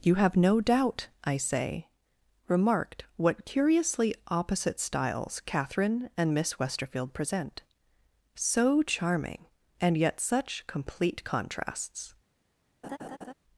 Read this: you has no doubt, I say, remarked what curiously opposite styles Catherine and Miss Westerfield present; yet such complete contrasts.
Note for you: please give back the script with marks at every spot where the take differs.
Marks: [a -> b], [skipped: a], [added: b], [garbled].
you [has -> have] no doubt, I say, remarked what curiously opposite styles Catherine and Miss Westerfield present; [added: so charming and] yet such complete contrasts.